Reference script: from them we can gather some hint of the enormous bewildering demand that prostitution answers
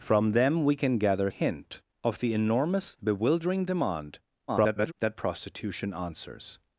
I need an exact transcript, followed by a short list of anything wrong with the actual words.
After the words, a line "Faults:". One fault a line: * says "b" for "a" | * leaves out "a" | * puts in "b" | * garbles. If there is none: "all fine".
from them we can gather hint of the enormous bewildering demand [garbled] that prostitution answers
Faults:
* leaves out "some"
* garbles